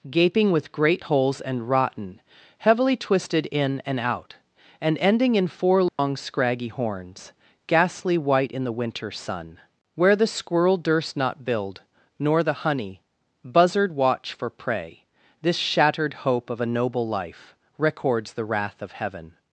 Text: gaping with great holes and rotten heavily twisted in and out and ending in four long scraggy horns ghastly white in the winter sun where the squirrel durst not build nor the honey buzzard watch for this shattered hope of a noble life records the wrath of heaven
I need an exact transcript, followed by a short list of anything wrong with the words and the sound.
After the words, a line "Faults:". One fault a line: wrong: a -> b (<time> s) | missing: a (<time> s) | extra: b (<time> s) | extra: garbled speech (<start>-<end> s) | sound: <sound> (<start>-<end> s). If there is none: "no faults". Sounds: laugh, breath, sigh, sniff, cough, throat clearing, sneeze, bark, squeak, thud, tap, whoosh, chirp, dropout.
gaping with great holes and rotten heavily twisted in and out and ending in four long scraggy horns ghastly white in the winter sun where the squirrel durst not build nor the honey buzzard watch for prey this shattered hope of a noble life records the wrath of heaven
Faults:
sound: dropout (5.9-6.0 s)
extra: prey (14.5 s)